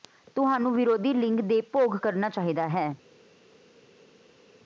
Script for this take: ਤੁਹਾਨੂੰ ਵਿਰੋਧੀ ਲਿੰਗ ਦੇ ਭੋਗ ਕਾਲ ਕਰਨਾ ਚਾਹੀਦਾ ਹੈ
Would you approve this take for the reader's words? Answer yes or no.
no